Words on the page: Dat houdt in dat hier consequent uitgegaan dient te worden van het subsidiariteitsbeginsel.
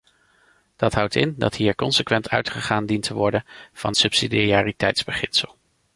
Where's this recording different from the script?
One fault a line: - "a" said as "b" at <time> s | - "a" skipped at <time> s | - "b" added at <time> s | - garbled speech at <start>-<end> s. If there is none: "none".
- "het" skipped at 3.9 s